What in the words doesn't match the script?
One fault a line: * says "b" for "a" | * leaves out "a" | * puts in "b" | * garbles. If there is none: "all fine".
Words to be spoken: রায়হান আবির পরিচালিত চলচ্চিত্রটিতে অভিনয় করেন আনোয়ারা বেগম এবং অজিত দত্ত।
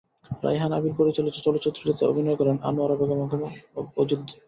all fine